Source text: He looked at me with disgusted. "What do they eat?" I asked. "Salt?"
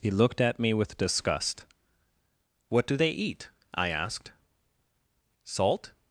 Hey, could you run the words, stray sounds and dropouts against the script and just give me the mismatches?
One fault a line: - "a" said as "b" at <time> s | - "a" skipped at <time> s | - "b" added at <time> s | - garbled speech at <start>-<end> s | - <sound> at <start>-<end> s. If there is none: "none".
- "disgusted" said as "disgust" at 1.0 s